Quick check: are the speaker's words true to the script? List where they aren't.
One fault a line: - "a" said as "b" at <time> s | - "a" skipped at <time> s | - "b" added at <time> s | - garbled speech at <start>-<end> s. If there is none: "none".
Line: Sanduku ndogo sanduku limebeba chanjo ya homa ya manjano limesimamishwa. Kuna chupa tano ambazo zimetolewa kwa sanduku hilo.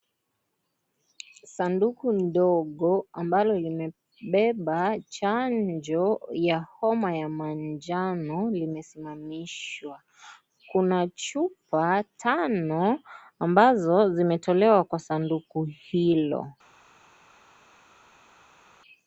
- "sanduku" said as "ambalo" at 3.2 s